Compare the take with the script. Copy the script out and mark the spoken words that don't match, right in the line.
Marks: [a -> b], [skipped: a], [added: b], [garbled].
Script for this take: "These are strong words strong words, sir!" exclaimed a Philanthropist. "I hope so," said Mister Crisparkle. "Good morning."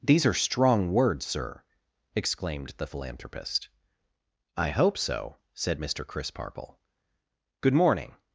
"These are strong words [skipped: strong words,] sir!" exclaimed [a -> the] Philanthropist. "I hope so," said Mister Crisparkle. "Good morning."